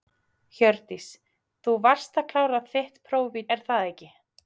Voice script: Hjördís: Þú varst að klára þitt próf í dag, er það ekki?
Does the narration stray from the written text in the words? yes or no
yes